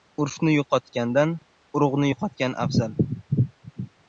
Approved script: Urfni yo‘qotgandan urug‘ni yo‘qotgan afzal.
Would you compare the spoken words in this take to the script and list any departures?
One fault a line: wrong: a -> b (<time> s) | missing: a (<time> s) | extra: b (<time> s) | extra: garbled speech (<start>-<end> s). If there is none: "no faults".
no faults